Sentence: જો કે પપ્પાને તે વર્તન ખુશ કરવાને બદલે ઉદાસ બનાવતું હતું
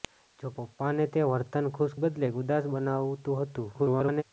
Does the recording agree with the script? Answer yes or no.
no